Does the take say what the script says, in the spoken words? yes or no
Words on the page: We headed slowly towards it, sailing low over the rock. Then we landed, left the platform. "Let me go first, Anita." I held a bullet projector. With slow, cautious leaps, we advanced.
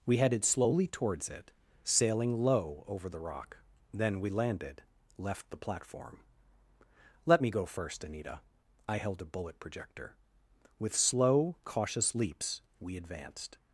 yes